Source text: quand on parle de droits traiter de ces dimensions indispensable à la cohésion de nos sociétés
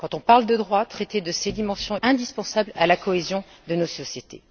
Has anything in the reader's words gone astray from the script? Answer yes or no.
no